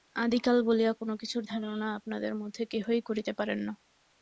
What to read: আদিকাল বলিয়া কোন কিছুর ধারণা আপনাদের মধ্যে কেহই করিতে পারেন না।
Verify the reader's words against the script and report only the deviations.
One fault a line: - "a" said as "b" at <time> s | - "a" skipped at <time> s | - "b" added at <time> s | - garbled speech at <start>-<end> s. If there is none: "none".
none